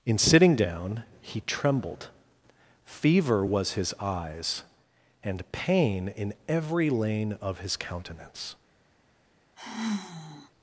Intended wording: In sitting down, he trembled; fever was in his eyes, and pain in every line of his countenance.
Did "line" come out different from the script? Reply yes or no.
yes